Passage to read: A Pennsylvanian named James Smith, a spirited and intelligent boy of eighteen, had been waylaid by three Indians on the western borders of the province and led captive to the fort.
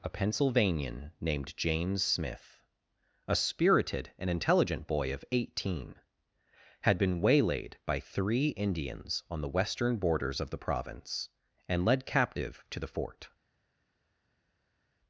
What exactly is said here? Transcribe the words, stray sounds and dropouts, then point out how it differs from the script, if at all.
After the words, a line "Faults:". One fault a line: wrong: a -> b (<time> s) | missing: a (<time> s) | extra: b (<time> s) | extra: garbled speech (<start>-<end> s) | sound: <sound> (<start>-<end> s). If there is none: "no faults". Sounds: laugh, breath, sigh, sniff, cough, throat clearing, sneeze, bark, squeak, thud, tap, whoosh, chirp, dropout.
A Pennsylvanian named James Smith, a spirited and intelligent boy of eighteen, had been waylaid by three Indians on the western borders of the province and led captive to the fort.
Faults:
no faults